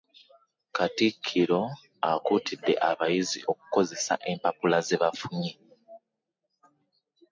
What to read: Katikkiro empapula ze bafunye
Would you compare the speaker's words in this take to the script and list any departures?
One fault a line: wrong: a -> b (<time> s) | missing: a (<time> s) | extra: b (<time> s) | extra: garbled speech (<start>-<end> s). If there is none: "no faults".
extra: akuutidde abayizi okukozesa (2.1 s)